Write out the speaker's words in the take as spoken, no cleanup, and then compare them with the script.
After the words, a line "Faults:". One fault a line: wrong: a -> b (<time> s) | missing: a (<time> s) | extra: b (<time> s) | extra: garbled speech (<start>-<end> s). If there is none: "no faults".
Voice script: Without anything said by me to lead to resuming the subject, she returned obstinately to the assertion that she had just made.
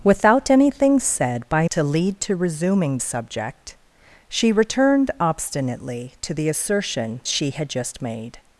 Without anything said by to lead to resuming subject, she returned obstinately to the assertion she had just made.
Faults:
missing: me (1.7 s)
missing: the (3.0 s)
missing: that (7.2 s)